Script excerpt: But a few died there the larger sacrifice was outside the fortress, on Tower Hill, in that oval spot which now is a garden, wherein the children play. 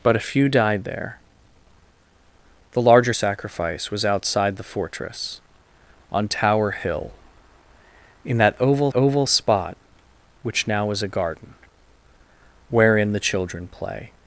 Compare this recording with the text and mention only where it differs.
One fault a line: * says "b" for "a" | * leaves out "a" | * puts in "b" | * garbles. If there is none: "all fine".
* puts in "oval"